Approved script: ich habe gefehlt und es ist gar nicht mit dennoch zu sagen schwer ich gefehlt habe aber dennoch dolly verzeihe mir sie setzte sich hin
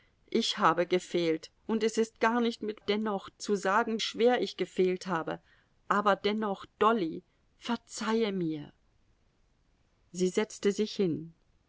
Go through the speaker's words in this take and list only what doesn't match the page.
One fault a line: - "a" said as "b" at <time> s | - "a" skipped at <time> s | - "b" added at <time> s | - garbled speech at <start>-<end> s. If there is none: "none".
none